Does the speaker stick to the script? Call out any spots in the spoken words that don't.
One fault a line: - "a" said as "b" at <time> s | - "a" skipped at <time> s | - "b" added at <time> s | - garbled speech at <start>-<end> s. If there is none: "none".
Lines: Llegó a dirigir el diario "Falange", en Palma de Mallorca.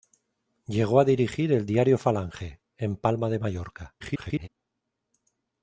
- garbled speech at 4.0-4.5 s